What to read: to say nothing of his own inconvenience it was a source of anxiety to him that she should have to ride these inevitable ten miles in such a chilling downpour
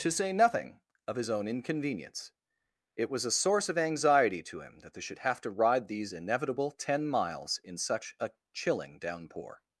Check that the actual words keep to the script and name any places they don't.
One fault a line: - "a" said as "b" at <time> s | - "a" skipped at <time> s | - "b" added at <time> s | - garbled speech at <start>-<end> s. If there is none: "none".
- "she" said as "they" at 4.9 s